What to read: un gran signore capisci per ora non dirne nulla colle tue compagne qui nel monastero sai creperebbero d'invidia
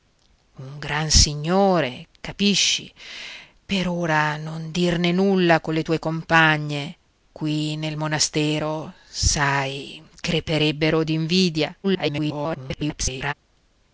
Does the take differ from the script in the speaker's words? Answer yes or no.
yes